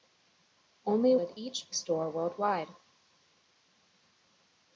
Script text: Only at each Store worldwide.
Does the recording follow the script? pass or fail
pass